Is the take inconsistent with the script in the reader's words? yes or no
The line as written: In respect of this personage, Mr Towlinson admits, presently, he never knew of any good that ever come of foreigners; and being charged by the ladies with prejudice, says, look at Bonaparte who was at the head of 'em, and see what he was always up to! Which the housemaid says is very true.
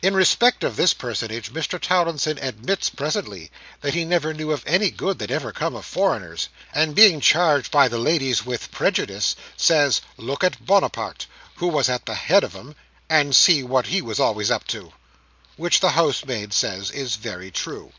yes